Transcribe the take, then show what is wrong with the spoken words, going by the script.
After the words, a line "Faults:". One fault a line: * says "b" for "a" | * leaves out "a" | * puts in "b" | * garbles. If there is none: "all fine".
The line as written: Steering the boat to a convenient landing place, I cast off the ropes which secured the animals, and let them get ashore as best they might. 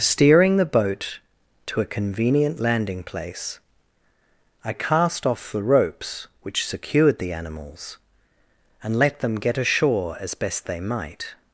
Steering the boat to a convenient landing place, I cast off the ropes which secured the animals, and let them get ashore as best they might.
Faults:
all fine